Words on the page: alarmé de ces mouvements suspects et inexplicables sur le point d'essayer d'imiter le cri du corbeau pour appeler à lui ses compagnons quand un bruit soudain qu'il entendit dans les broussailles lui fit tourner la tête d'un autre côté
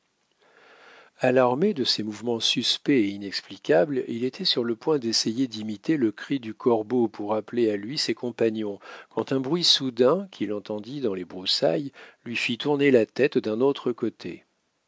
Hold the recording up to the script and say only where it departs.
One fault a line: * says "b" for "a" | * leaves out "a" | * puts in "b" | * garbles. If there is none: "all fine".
* puts in "il était"